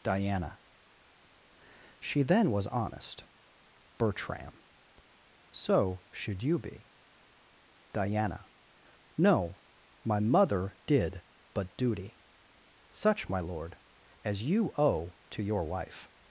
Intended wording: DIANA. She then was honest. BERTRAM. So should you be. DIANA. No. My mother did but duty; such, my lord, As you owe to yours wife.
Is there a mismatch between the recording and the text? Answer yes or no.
yes